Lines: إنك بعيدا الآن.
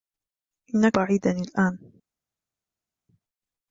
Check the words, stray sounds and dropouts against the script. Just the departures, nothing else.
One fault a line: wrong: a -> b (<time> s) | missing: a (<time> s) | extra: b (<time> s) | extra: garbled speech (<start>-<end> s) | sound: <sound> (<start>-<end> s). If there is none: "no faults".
no faults